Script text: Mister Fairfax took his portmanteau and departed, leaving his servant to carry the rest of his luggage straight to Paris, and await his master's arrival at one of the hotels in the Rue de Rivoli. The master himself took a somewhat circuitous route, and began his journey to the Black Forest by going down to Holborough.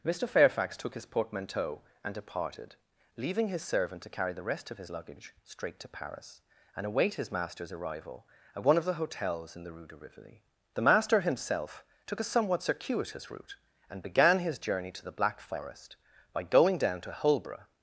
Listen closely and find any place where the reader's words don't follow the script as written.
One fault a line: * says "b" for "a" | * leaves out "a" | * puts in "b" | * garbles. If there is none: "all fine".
all fine